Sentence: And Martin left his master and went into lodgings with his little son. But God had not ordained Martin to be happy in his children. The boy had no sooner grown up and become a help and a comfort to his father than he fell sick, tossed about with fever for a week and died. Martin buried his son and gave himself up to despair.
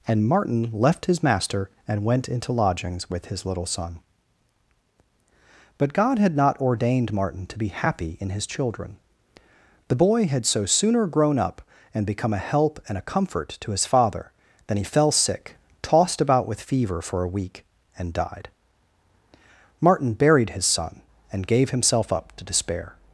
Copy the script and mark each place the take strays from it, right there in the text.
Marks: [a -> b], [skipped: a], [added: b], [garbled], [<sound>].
And Martin left his master and went into lodgings with his little son. But God had not ordained Martin to be happy in his children. The boy had [no -> so] sooner grown up and become a help and a comfort to his father than he fell sick, tossed about with fever for a week and died. Martin buried his son and gave himself up to despair.